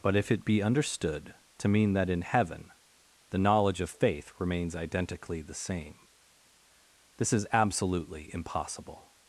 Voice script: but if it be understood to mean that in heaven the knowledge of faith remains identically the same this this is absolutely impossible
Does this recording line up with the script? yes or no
no